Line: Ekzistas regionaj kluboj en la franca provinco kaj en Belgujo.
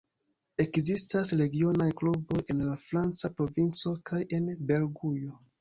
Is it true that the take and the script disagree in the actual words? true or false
false